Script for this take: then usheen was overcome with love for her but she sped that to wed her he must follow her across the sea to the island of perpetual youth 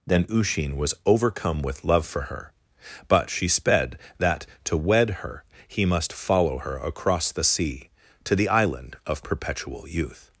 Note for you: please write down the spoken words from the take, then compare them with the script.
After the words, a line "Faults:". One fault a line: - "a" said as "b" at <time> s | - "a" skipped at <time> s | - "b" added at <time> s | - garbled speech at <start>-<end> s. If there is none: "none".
then usheen was overcome with love for her but she sped that to wed her he must follow her across the sea to the island of perpetual youth
Faults:
none